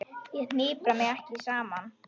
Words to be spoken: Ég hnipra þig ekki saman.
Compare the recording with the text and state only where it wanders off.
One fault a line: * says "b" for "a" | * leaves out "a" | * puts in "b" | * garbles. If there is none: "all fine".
* says "mig" for "þig"